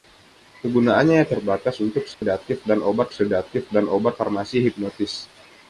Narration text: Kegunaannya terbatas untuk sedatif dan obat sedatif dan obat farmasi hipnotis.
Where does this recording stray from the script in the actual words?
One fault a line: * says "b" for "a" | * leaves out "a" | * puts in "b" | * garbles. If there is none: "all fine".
all fine